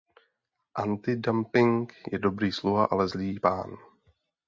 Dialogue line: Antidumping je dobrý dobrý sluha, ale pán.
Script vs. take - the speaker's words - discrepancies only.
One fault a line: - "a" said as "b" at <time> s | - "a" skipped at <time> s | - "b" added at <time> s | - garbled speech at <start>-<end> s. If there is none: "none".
- "dobrý" skipped at 2.5 s
- "zlý" added at 3.1 s